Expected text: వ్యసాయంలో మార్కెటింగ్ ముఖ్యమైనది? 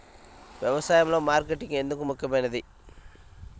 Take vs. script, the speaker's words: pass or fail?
fail